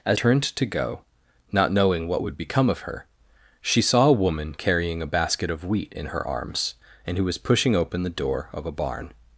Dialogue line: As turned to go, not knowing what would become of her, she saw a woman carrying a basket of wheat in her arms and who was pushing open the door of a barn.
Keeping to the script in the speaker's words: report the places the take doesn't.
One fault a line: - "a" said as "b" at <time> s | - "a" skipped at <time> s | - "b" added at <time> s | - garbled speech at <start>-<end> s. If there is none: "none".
none